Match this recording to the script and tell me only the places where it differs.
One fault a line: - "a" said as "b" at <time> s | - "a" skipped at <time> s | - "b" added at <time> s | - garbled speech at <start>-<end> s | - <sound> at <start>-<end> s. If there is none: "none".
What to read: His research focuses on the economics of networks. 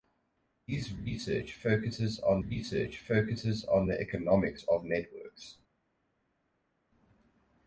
- "research focuses on" added at 2.4 s